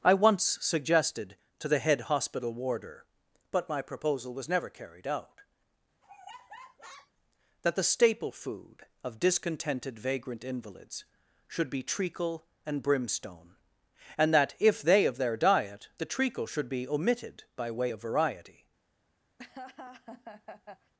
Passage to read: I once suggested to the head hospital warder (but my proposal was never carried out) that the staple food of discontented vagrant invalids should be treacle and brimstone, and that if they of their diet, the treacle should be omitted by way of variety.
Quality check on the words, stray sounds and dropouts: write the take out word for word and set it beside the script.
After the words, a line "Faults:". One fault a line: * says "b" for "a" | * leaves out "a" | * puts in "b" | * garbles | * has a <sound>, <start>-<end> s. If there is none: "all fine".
I once suggested to the head hospital warder (but my proposal was never carried out) that the staple food of discontented vagrant invalids should be treacle and brimstone, and that if they of their diet, the treacle should be omitted by way of variety.
Faults:
* has a laugh, 6.0-7.1 s
* has a laugh, 19.4-20.9 s